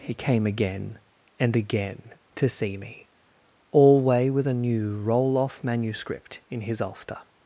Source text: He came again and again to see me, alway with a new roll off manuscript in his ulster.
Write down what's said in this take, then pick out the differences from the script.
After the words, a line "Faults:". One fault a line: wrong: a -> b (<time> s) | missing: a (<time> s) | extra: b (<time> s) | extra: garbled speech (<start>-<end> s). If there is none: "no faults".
He came again and again to see me, alway with a new roll off manuscript in his ulster.
Faults:
no faults